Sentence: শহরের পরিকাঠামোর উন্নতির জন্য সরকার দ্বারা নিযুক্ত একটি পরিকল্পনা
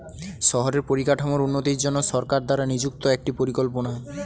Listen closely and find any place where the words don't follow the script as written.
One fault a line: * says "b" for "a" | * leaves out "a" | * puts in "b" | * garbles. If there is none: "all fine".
all fine